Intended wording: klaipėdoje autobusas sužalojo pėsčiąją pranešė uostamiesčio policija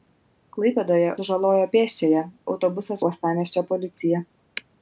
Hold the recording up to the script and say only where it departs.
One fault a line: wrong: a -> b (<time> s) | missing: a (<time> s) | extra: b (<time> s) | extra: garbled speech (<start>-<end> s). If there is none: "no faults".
missing: autobusas (1.1 s)
wrong: pranešė -> autobusas (2.5 s)